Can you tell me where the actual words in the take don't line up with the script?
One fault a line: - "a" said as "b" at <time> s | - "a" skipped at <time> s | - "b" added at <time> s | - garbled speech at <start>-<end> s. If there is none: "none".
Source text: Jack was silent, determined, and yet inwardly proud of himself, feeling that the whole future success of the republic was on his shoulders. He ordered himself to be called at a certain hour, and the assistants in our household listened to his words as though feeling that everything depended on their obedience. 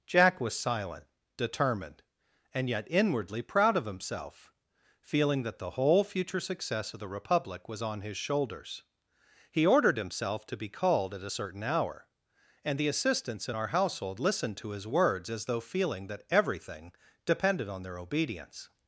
none